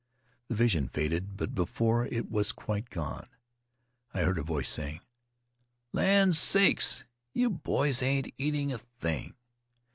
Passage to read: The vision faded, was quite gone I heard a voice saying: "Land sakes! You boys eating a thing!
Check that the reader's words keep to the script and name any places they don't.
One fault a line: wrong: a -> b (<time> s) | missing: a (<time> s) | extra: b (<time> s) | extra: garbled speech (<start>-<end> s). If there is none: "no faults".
extra: but before it (1.4 s)
extra: ain't (8.0 s)